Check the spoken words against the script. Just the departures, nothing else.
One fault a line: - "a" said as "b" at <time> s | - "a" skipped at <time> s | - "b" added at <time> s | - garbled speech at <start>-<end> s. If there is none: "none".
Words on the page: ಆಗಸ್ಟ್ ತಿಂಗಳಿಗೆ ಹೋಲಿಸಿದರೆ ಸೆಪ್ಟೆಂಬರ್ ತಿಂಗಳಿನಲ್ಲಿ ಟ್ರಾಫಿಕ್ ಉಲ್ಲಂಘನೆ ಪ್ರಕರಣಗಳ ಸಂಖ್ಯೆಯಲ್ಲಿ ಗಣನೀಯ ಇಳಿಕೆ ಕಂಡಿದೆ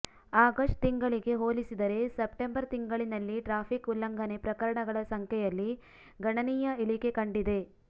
none